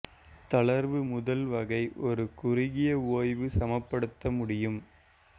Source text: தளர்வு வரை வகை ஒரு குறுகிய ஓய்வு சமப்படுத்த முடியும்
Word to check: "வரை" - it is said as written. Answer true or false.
false